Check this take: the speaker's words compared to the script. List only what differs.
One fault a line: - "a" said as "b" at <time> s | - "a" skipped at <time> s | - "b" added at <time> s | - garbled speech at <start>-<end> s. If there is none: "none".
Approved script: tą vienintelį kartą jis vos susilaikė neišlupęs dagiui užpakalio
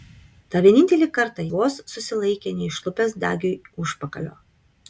- "jis" skipped at 1.4 s